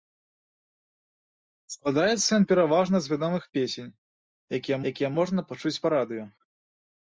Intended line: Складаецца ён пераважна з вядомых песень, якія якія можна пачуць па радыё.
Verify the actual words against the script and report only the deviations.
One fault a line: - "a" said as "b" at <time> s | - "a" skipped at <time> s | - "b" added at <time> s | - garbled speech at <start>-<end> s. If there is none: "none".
none